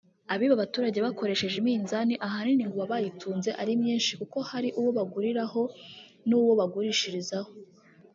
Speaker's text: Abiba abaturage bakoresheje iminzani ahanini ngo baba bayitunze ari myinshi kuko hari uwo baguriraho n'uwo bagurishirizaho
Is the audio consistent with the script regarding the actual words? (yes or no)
yes